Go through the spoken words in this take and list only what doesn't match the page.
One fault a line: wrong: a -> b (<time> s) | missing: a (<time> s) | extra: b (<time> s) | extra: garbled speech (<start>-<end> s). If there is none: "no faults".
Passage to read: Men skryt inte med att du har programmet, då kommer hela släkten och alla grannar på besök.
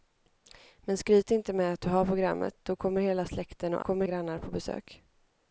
wrong: alla -> kommer (3.8 s)